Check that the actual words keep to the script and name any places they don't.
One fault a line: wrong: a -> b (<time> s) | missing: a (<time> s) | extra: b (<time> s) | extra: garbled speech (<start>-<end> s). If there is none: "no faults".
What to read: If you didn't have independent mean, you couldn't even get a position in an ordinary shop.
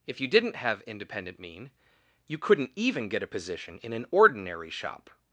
no faults